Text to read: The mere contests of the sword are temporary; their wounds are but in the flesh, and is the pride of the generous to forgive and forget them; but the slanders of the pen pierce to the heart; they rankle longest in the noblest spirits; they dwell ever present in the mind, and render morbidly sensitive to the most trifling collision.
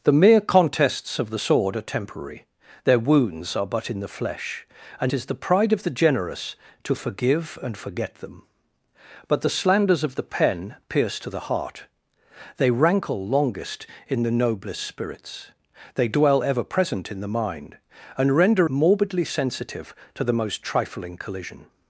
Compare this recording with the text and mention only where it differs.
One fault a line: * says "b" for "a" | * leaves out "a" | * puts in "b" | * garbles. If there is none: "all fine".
all fine